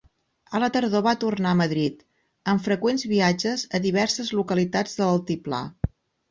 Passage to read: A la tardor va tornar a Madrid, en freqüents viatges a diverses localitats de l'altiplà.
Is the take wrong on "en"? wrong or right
wrong